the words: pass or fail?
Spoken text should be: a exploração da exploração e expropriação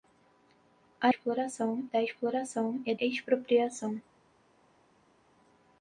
pass